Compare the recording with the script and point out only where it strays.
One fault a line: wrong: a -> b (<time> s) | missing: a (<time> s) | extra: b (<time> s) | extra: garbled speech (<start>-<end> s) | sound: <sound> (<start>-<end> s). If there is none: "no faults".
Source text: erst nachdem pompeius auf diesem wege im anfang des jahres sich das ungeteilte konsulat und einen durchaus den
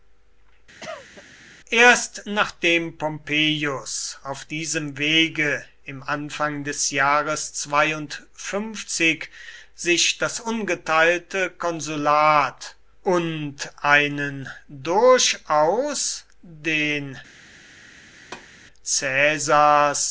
sound: cough (0.8-1.2 s)
sound: thud (18.2-18.5 s)